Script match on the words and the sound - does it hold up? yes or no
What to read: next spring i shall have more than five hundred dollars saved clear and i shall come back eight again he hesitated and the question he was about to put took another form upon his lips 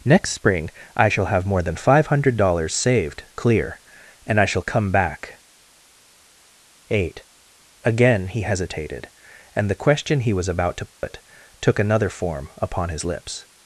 no